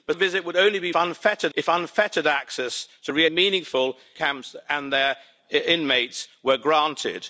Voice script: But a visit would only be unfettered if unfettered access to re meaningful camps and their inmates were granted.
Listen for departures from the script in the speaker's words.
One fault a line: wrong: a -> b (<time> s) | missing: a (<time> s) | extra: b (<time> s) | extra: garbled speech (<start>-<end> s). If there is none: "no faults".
no faults